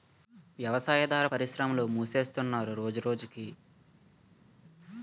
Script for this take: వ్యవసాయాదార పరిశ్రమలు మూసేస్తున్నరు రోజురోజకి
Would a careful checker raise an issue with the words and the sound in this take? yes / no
no